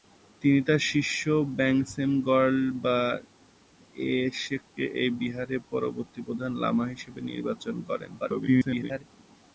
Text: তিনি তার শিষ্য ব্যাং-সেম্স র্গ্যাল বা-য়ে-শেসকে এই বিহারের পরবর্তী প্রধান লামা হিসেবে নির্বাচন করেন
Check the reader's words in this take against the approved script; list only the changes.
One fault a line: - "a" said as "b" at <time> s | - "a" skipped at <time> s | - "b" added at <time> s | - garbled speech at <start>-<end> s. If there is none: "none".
- garbled speech at 8.2-9.0 s